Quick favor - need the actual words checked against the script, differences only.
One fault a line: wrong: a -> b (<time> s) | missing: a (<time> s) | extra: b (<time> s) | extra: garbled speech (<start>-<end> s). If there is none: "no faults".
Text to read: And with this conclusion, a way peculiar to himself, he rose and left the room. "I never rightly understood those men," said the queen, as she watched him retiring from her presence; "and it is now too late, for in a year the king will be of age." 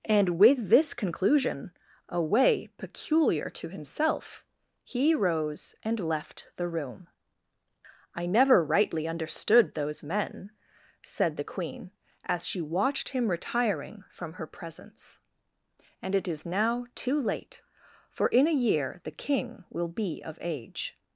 no faults